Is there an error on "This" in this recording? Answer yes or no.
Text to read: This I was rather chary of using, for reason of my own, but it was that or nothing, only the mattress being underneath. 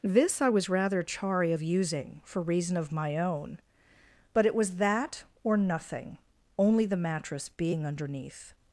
no